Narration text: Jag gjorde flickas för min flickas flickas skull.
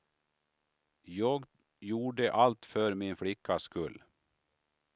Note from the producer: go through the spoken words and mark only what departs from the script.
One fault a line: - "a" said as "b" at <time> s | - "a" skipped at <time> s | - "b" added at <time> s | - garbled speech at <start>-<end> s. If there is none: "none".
- "flickas" said as "allt" at 2.3 s
- "flickas" skipped at 3.6 s